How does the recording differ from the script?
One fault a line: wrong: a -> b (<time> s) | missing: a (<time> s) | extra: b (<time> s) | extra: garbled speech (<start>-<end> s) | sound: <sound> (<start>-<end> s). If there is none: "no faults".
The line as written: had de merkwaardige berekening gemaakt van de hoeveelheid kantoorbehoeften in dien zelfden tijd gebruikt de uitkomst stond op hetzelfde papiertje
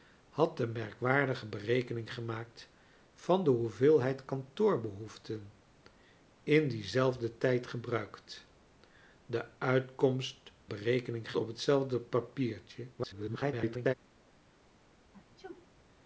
wrong: stond -> berekening (10.7 s)
extra: garbled speech (13.0-13.9 s)
sound: sneeze (15.1-15.7 s)